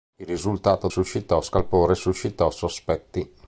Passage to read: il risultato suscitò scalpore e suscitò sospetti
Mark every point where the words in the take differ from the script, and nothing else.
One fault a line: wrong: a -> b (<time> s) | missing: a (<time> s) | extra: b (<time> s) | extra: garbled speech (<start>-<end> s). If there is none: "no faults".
no faults